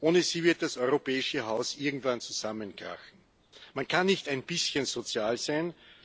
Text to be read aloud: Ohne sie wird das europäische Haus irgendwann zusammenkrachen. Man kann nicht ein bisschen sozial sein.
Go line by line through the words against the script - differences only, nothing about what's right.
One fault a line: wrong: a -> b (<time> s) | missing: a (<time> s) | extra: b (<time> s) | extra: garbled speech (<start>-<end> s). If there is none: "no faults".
no faults